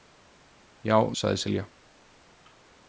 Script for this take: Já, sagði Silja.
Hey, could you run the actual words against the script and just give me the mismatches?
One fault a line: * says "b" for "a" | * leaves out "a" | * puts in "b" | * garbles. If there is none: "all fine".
all fine